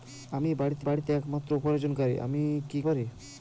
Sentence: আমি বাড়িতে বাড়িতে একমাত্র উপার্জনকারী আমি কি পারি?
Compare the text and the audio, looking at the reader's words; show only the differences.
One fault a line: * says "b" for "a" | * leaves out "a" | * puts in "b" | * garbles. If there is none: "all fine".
all fine